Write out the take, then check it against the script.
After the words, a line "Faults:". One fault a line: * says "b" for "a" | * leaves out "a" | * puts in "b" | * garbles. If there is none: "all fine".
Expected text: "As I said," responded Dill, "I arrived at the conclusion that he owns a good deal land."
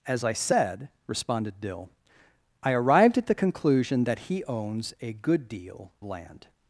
"As I said," responded Dill, "I arrived at the conclusion that he owns a good deal land."
Faults:
all fine